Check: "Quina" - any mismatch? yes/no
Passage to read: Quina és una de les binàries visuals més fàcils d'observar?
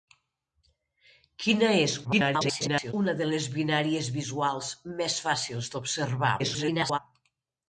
no